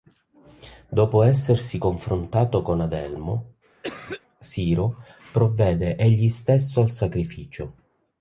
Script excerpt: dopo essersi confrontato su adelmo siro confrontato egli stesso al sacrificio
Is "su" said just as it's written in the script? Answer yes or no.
no